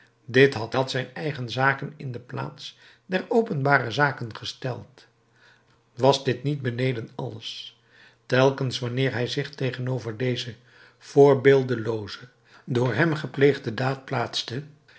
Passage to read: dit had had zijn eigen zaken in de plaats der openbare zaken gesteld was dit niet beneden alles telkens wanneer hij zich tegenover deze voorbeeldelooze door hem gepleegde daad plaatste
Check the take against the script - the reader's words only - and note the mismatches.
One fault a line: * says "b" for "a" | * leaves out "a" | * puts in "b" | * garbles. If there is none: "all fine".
all fine